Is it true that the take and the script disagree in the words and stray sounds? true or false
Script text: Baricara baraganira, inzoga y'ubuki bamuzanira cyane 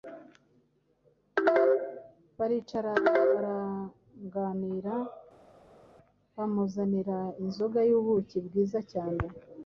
true